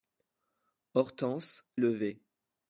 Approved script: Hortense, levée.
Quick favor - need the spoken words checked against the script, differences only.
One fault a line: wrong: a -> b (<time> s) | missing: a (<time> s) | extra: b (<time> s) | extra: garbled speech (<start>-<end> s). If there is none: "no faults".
no faults